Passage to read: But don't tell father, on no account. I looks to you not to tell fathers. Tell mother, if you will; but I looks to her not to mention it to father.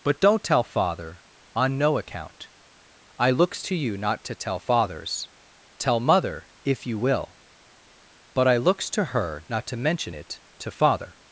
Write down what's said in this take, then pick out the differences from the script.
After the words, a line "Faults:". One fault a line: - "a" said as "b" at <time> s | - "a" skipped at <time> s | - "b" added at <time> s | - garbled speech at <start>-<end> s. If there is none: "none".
But don't tell father, on no account. I looks to you not to tell fathers. Tell mother, if you will; but I looks to her not to mention it to father.
Faults:
none